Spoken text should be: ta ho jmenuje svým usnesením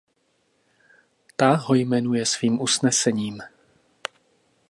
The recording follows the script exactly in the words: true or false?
true